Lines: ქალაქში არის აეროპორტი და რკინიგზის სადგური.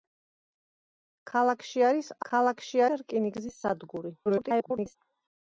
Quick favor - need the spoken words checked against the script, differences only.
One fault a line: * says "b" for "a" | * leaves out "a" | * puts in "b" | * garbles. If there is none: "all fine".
* says "ქალაქში" for "აეროპორტი"
* garbles